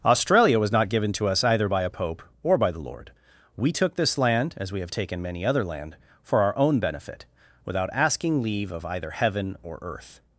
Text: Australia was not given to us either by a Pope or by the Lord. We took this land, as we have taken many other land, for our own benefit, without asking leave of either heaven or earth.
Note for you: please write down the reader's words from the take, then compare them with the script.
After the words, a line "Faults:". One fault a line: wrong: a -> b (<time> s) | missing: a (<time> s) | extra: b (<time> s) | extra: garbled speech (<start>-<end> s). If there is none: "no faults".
Australia was not given to us either by a Pope or by the Lord. We took this land, as we have taken many other land, for our own benefit, without asking leave of either heaven or earth.
Faults:
no faults